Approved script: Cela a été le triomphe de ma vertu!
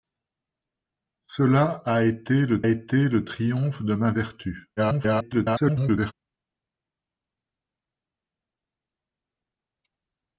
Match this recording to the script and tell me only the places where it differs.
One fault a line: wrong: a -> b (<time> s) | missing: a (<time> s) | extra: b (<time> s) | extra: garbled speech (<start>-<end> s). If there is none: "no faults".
extra: été le (2.7 s)
extra: garbled speech (4.8-6.1 s)